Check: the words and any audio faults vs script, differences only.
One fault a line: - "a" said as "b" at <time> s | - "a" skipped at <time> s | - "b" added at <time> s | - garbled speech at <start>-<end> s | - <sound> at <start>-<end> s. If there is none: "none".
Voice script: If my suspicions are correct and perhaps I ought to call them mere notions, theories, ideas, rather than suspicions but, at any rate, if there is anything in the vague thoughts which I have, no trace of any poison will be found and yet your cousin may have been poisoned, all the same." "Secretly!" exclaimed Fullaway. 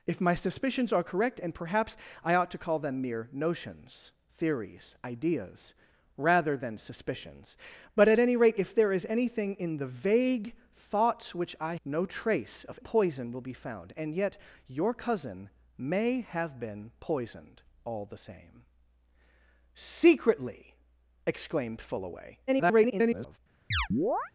- "have" skipped at 11.8 s
- "any" skipped at 12.8 s
- garbled speech at 22.5-23.4 s
- chirp at 23.7-24.3 s